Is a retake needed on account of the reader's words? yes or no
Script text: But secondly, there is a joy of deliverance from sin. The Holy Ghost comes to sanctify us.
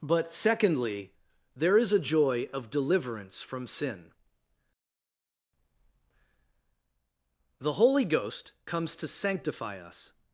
no